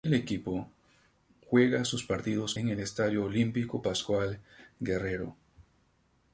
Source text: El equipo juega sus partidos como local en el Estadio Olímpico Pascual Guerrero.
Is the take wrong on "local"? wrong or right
wrong